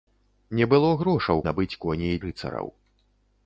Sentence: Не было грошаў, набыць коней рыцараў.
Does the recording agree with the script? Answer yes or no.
yes